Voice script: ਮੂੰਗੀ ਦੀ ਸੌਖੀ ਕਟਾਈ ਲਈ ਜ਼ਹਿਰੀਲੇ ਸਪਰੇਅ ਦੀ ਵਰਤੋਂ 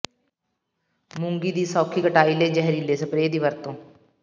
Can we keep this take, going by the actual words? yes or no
yes